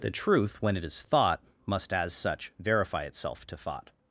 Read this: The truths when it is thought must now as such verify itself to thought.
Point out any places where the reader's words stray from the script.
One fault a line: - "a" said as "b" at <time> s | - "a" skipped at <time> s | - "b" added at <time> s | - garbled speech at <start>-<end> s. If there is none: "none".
- "truths" said as "truth" at 0.1 s
- "now" skipped at 1.9 s